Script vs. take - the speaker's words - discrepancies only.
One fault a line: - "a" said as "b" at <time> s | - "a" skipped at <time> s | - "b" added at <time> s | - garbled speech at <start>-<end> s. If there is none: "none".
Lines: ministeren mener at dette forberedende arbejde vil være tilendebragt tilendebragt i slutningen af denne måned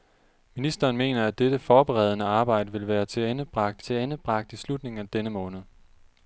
none